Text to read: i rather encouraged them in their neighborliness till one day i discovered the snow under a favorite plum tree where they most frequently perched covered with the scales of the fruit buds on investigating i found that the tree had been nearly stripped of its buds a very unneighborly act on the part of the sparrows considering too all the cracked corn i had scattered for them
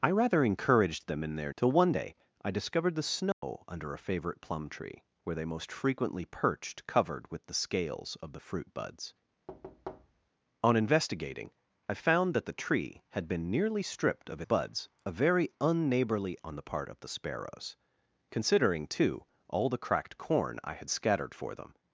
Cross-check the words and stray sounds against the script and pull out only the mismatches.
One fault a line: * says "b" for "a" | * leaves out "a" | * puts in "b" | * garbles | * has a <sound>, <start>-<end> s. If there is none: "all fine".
* leaves out "neighborliness"
* has a dropout, 3.3-3.4 s
* has a thud, 9.5-10.3 s
* leaves out "its"
* leaves out "act"